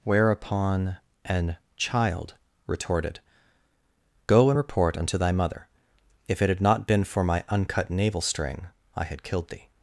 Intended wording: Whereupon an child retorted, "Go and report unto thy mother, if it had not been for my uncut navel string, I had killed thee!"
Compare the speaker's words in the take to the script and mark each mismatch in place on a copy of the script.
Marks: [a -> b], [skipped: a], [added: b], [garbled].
Whereupon an child retorted, "Go and report unto thy mother, if it had not been for my uncut navel string, I had killed thee!"